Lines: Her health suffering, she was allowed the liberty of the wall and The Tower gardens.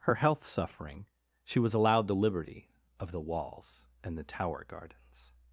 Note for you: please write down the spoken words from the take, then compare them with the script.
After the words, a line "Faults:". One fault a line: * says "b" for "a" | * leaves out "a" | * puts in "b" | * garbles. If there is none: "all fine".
Her health suffering, she was allowed the liberty of the walls and The Tower gardens.
Faults:
* says "walls" for "wall"